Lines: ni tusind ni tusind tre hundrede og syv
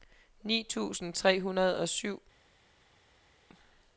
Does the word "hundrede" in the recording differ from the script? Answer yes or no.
no